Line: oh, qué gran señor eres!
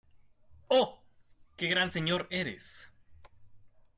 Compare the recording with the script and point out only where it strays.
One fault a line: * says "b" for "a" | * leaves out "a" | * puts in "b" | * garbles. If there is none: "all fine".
all fine